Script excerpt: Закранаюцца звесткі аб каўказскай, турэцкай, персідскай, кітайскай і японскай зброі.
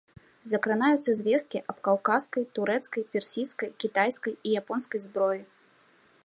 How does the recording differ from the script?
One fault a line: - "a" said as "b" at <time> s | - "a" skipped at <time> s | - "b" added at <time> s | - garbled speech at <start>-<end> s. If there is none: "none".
none